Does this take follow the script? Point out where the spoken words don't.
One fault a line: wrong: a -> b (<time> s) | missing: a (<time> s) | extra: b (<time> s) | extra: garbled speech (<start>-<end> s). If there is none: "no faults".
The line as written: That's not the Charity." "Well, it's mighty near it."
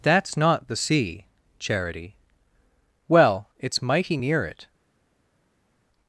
extra: sea (0.8 s)